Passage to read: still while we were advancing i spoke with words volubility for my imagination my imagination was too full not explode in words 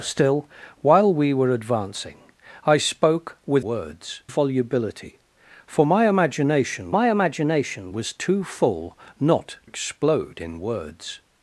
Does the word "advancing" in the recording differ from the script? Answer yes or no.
no